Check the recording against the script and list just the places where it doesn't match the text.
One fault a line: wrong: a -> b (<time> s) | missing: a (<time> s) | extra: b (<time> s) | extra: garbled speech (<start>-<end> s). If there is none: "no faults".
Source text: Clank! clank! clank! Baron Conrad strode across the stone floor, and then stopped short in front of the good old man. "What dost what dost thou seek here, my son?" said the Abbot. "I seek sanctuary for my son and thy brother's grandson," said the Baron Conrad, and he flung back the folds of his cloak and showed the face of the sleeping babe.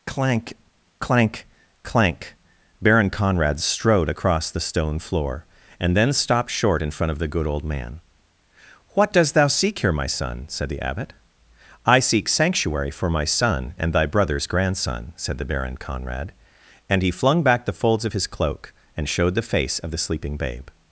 missing: what dost (9.3 s)